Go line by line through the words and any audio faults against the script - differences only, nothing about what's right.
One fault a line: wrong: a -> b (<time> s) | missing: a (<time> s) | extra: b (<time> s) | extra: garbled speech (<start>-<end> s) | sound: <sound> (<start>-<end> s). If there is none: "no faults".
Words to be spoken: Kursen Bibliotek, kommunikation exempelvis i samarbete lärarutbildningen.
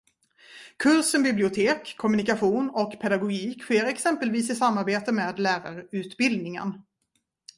extra: och pedagogik sker (2.7 s)
extra: med (5.1 s)